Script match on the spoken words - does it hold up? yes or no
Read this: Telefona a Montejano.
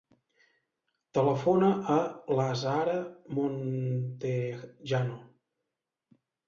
no